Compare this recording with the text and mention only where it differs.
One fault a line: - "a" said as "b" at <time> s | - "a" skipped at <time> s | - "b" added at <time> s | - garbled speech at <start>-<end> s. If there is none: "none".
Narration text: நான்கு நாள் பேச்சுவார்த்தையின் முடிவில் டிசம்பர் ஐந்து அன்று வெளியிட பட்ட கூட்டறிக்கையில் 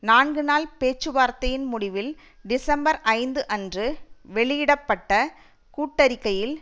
none